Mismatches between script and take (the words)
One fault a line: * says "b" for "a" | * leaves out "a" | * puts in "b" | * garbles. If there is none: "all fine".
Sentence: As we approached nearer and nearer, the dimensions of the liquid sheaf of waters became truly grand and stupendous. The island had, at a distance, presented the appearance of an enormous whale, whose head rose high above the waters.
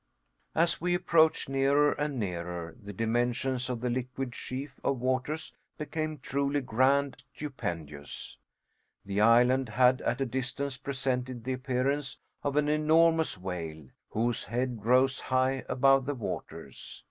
* leaves out "and"